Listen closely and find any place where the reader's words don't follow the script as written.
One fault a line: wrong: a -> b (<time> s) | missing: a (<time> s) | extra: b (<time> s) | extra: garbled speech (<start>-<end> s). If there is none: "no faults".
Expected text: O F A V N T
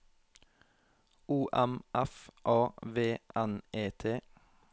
extra: M (1.5 s)
extra: E (3.7 s)